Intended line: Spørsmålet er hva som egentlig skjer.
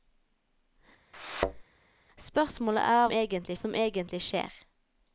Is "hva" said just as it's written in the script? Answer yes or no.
no